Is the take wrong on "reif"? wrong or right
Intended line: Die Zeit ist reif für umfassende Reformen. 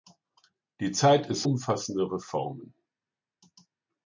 wrong